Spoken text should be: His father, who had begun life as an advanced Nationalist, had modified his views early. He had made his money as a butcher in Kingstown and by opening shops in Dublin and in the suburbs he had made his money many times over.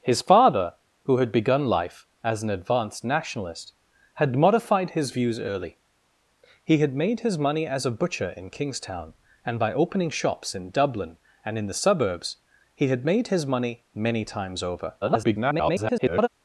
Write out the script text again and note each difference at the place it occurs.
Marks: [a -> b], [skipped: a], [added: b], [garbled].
His father, who had begun life as an advanced Nationalist, had modified his views early. He had made his money as a butcher in Kingstown and by opening shops in Dublin and in the suburbs he had made his money many times over. [garbled]